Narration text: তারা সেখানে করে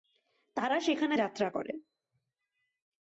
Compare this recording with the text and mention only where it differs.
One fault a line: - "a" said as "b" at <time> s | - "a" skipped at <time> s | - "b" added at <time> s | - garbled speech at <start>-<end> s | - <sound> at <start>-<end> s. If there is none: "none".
- "যাত্রা" added at 1.1 s